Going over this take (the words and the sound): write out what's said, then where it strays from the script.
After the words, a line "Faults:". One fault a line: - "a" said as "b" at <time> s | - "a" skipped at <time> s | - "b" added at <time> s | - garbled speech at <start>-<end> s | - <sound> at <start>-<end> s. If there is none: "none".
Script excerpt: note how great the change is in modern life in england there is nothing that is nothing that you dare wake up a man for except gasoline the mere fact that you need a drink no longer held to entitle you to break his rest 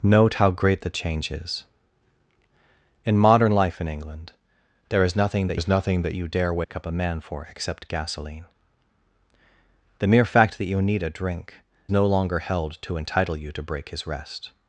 note how great the change is in modern life in england there is nothing that is nothing that you dare wake up a man for except gasoline the mere fact that you need a drink no longer held to entitle you to break his rest
Faults:
- dropout at 6.6-6.7 s